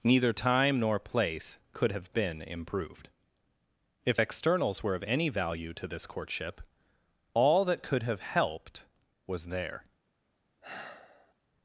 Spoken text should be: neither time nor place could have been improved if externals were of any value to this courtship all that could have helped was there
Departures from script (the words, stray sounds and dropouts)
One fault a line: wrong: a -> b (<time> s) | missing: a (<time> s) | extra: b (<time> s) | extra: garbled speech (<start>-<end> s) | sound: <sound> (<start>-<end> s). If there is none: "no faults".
sound: sigh (10.6-11.3 s)